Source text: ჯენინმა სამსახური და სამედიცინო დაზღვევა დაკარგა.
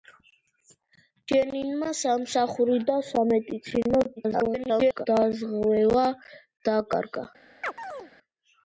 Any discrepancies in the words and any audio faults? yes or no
yes